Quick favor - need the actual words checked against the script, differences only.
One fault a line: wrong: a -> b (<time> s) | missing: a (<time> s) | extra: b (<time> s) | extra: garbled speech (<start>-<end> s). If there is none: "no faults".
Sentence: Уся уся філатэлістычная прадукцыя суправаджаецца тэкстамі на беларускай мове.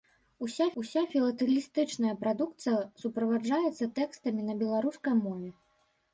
no faults